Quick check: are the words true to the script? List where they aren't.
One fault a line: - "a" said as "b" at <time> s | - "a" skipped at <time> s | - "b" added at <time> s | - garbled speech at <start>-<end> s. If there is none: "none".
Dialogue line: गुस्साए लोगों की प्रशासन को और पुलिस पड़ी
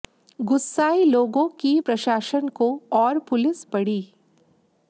none